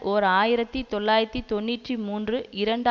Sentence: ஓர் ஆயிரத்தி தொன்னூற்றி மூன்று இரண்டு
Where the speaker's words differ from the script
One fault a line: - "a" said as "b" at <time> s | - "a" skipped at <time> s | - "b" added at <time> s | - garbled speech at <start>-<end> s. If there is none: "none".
- "தொள்ளாயிரத்தி" added at 0.9 s